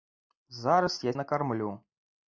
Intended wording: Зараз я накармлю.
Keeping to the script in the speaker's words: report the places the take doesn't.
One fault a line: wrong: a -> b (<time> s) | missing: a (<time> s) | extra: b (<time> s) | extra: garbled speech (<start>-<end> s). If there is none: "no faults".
no faults